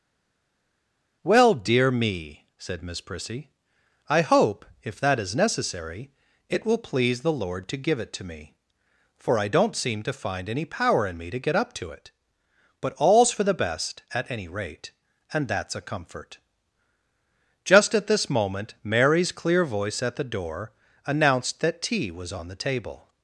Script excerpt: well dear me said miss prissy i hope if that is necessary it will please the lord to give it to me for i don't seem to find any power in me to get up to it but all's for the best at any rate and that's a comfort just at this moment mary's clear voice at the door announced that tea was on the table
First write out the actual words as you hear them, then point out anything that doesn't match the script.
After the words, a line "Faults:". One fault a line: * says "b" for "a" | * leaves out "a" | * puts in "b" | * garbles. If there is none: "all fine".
well dear me said miss prissy i hope if that is necessary it will please the lord to give it to me for i don't seem to find any power in me to get up to it but all's for the best at any rate and that's a comfort just at this moment mary's clear voice at the door announced that tea was on the table
Faults:
all fine